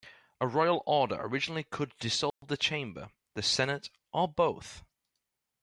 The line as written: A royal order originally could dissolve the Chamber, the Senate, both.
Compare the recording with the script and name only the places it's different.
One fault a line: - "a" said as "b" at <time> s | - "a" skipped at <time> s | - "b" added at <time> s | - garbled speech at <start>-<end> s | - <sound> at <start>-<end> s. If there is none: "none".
- dropout at 2.3-2.4 s
- "or" added at 4.1 s